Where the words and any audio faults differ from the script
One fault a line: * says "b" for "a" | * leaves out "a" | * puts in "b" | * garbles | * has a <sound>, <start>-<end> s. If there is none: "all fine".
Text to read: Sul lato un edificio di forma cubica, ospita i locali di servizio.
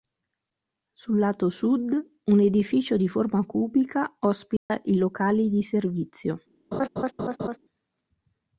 * puts in "sud"
* has a dropout, 4.6-4.7 s
* has a laugh, 6.7-7.6 s